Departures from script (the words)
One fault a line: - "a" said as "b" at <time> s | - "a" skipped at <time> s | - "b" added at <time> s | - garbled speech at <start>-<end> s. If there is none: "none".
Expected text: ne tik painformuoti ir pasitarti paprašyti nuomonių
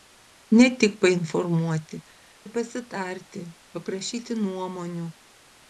none